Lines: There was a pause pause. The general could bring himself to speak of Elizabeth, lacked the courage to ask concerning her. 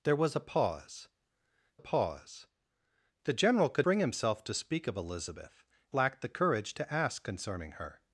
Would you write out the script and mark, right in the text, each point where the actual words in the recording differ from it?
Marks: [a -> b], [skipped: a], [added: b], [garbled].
There was a pause pause. The general could bring himself to speak of Elizabeth, lacked the courage to ask concerning her.